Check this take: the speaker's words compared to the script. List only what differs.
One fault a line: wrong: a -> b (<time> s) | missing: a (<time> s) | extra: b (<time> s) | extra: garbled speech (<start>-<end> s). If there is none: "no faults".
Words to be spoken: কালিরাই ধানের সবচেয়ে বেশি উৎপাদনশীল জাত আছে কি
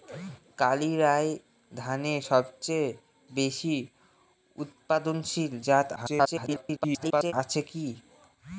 extra: garbled speech (6.0-7.3 s)